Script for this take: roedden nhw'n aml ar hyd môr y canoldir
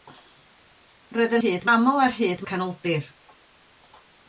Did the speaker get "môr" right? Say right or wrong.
wrong